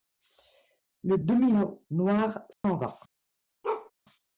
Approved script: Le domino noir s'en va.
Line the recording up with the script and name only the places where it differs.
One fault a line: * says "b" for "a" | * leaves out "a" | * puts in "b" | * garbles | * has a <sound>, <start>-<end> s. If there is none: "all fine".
* has a dropout, 2.5-2.6 s
* has a bark, 3.6-3.9 s